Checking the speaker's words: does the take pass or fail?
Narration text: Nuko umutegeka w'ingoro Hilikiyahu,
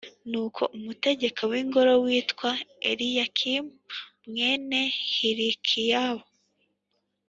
fail